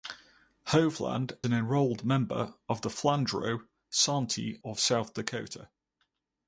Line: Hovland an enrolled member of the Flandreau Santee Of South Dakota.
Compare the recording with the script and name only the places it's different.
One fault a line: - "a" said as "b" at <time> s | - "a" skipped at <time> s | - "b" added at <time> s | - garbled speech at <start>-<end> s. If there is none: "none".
none